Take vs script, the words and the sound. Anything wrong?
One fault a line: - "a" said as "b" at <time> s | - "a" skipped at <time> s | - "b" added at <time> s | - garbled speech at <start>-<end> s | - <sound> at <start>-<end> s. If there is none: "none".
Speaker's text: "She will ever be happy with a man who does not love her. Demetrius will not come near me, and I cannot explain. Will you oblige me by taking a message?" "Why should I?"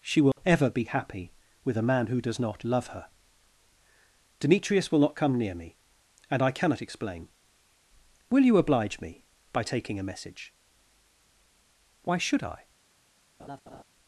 - dropout at 0.3-0.4 s
- laugh at 13.4-13.8 s